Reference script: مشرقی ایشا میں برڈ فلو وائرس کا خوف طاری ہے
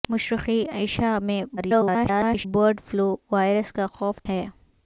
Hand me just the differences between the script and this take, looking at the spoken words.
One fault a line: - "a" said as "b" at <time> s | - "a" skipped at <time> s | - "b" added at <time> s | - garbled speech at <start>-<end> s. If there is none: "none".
- garbled speech at 1.6-2.5 s
- "طاری" skipped at 4.2 s